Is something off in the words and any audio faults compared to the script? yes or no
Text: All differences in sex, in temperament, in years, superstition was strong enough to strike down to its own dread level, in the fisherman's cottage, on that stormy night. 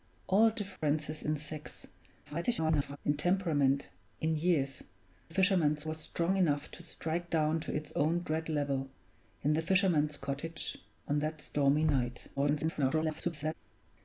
yes